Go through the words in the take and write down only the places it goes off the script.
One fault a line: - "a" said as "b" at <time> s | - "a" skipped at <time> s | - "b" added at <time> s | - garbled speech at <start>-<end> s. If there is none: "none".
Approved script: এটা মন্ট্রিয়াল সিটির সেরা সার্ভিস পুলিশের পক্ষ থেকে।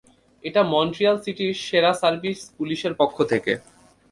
none